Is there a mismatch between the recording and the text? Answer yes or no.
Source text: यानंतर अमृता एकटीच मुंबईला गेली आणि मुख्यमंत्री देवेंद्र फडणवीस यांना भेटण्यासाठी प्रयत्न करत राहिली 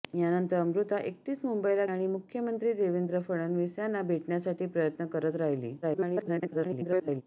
yes